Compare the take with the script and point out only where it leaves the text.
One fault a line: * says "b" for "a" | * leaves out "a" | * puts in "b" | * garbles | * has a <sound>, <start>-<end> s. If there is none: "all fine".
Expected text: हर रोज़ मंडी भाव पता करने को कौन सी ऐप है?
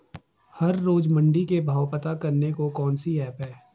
* puts in "के"